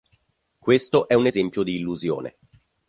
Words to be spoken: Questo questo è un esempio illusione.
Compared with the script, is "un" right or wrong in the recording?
right